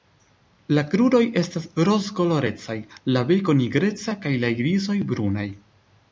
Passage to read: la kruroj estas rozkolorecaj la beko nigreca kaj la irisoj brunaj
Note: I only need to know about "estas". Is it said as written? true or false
true